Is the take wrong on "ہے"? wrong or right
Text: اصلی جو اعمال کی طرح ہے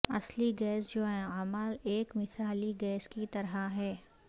right